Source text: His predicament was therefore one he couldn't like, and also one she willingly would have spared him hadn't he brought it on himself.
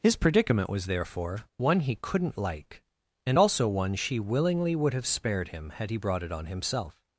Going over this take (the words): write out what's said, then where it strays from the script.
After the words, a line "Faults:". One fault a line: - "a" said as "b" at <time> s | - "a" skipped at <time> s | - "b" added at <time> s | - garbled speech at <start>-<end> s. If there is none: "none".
His predicament was therefore one he couldn't like, and also one she willingly would have spared him had he brought it on himself.
Faults:
- "hadn't" said as "had" at 5.7 s